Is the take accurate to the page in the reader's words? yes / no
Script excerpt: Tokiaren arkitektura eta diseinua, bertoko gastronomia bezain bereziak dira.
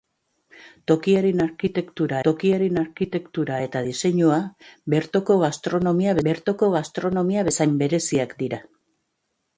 no